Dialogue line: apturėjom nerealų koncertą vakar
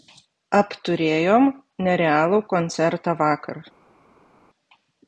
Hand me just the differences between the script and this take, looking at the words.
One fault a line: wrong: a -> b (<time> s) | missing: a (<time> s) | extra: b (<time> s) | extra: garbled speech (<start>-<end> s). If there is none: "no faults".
no faults